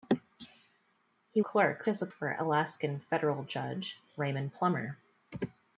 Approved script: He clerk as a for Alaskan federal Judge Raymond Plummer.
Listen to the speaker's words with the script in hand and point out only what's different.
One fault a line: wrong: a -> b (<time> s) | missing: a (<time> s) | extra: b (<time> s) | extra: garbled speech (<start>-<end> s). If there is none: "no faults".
no faults